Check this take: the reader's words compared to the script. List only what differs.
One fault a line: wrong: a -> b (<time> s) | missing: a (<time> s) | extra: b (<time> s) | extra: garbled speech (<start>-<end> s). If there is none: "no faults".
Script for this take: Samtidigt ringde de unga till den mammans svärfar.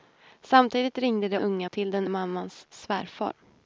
no faults